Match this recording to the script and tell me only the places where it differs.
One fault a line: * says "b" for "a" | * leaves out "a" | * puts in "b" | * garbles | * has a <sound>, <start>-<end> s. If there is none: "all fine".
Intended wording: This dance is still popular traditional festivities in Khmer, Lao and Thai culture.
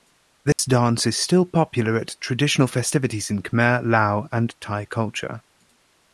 * has a dropout, 0.5-0.6 s
* puts in "at"